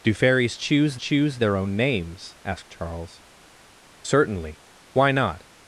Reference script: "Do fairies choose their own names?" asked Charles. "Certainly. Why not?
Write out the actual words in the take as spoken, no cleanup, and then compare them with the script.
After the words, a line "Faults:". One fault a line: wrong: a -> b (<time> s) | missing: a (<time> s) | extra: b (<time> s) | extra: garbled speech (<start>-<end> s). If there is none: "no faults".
"Do fairies choose choose their own names?" asked Charles. "Certainly. Why not?
Faults:
extra: choose (1.0 s)